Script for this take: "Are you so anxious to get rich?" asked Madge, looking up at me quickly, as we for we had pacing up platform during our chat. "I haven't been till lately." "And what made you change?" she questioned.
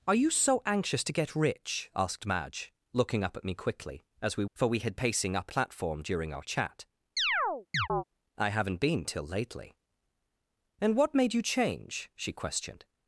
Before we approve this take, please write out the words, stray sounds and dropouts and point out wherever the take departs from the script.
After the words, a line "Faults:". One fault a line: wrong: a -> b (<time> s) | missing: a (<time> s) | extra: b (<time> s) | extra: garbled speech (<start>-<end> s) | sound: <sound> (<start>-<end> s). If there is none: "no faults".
"Are you so anxious to get rich?" asked Madge, looking up at me quickly, as we for we had pacing up platform during our chat. "I haven't been till lately." "And what made you change?" she questioned.
Faults:
sound: chirp (7.2-8.0 s)